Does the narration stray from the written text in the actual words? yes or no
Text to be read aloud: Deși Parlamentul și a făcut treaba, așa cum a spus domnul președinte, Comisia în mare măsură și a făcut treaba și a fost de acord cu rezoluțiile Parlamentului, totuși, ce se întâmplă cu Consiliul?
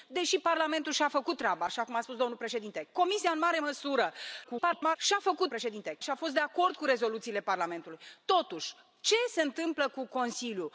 yes